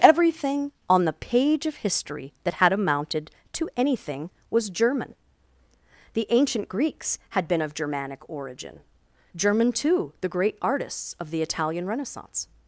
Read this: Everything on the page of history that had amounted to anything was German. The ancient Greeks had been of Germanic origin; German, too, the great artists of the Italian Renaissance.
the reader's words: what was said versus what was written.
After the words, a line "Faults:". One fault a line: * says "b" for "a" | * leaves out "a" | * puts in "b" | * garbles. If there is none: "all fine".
Everything on the page of history that had amounted to anything was German. The ancient Greeks had been of Germanic origin; German, too, the great artists of the Italian Renaissance.
Faults:
all fine